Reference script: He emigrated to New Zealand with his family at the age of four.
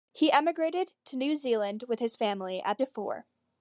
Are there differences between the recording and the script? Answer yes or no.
yes